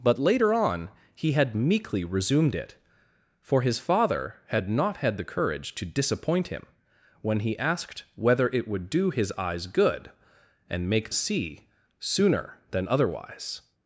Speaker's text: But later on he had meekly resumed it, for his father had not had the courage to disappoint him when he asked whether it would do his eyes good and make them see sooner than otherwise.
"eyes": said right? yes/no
yes